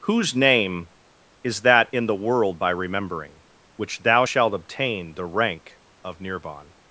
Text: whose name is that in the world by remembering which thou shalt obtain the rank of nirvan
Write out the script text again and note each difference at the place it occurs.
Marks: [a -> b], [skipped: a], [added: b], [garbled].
whose name is that in the world by remembering which thou shalt obtain the rank of nirvan